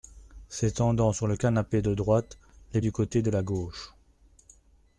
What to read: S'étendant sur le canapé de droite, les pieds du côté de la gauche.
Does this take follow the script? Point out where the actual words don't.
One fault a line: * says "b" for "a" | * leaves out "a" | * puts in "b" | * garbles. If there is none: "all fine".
* leaves out "pieds"